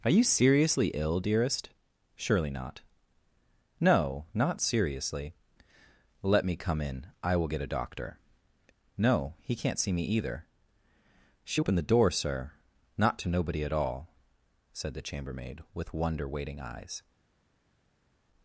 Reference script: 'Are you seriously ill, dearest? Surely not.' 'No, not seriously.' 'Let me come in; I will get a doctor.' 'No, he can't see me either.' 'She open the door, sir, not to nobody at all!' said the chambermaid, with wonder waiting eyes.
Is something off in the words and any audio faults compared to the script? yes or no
no